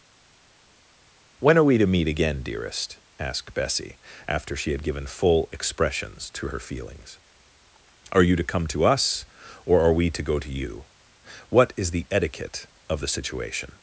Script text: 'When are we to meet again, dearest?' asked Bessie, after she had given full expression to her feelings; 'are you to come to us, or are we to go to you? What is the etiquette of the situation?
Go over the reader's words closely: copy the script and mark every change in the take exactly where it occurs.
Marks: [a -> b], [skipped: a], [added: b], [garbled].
'When are we to meet again, dearest?' asked Bessie, after she had given full [expression -> expressions] to her feelings; 'are you to come to us, or are we to go to you? What is the etiquette of the situation?